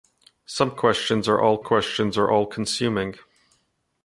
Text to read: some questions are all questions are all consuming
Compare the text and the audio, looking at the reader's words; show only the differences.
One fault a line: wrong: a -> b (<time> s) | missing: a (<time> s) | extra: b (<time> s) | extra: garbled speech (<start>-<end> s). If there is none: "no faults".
no faults